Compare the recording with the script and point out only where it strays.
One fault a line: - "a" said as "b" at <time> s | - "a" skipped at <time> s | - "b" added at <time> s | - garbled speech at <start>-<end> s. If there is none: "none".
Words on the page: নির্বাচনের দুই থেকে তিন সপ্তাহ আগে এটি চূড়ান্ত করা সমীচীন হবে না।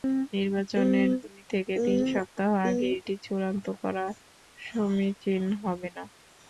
none